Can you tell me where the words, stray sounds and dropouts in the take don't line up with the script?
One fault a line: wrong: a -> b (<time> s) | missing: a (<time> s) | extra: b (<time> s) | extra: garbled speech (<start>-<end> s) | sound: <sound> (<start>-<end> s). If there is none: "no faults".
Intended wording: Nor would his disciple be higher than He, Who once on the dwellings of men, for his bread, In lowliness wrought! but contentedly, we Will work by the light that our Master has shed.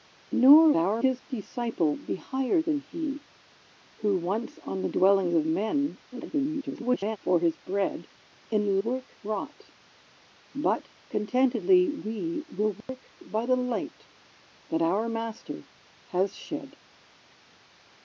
wrong: would -> our (0.8 s)
extra: garbled speech (6.1-7.2 s)
wrong: lowliness -> work (8.8 s)
sound: dropout (12.8-12.9 s)